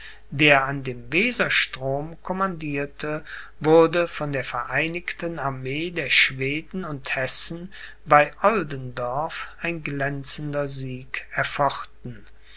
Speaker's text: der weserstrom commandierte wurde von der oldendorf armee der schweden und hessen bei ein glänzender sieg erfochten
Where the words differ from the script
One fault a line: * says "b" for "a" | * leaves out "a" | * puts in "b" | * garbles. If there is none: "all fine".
* puts in "an dem"
* says "vereinigten" for "oldendorf"
* puts in "oldendorf"